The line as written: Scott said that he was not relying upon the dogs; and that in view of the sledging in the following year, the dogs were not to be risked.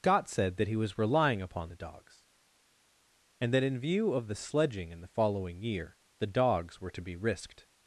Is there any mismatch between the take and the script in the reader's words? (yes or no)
yes